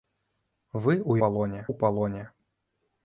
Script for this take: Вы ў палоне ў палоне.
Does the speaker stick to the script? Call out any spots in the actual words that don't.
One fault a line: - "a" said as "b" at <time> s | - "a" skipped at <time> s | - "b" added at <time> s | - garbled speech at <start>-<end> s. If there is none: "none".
none